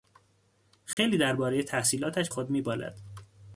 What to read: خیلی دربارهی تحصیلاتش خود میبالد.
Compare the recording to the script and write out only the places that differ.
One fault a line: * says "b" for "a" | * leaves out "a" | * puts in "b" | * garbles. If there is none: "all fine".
all fine